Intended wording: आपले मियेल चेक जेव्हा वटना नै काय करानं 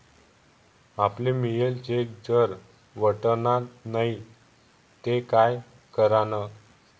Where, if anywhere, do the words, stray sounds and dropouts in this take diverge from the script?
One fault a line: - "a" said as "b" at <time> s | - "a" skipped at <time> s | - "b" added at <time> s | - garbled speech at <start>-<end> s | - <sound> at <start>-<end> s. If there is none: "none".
- "जेव्हा" said as "जर" at 2.3 s
- "ते" added at 5.0 s